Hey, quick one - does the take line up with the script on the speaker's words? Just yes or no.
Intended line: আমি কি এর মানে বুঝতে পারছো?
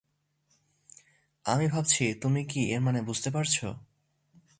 no